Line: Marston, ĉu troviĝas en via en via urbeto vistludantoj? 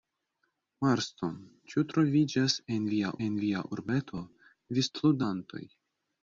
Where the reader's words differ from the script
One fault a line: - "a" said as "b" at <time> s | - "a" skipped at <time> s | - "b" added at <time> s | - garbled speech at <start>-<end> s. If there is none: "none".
none